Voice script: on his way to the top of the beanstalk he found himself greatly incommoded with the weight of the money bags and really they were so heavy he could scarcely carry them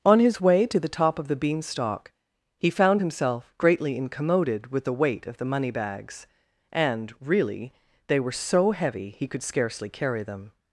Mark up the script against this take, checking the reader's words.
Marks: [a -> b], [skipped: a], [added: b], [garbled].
on his way to the top of the beanstalk he found himself greatly incommoded with the weight of the money bags and really they were so heavy he could scarcely carry them